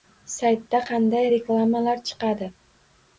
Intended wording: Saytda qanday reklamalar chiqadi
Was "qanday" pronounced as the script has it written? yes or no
yes